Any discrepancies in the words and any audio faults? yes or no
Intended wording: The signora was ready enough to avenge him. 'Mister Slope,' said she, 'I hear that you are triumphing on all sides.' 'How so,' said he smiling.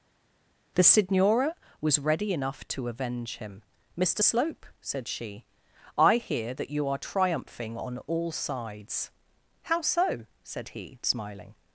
no